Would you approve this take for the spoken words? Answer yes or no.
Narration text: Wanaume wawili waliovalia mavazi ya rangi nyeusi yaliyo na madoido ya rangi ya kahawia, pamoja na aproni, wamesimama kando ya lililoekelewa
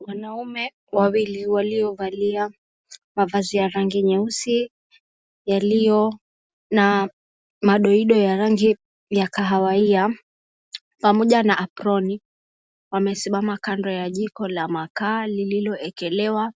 no